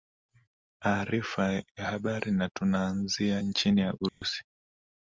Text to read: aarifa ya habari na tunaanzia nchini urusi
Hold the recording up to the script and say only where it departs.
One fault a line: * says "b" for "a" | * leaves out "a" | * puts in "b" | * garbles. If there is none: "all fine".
all fine